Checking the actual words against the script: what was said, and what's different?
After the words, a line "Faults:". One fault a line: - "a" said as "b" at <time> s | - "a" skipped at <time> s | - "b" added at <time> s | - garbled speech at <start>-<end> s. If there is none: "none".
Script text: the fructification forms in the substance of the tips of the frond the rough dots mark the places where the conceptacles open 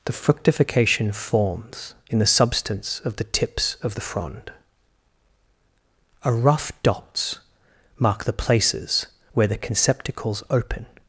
the fructification forms in the substance of the tips of the frond a rough dots mark the places where the conceptacles open
Faults:
- "the" said as "a" at 6.2 s